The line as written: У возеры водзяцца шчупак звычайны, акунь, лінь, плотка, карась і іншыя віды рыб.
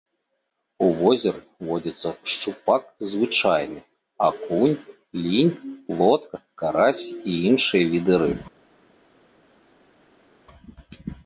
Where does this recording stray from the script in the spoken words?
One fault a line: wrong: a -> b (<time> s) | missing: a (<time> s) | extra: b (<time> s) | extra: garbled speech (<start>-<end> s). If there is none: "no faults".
no faults